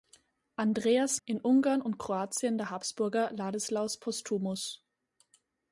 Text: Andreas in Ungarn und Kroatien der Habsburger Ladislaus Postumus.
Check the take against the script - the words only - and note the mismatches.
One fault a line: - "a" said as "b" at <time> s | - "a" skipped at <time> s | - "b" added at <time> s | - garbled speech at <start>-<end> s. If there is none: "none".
none